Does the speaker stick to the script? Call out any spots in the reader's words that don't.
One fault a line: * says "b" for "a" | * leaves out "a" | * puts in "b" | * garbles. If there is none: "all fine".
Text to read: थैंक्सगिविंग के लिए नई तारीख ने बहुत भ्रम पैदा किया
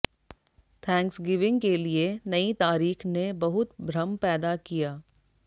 all fine